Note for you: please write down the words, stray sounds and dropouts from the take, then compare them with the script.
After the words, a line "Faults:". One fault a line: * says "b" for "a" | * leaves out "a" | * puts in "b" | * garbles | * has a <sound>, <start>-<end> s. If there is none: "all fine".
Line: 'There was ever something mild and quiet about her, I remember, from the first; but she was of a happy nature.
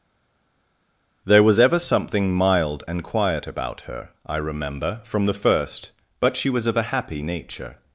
'There was ever something mild and quiet about her, I remember, from the first; but she was of a happy nature.
Faults:
all fine